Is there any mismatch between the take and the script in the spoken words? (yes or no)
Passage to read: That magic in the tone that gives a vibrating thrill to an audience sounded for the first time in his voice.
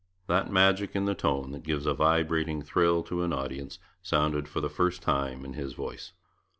no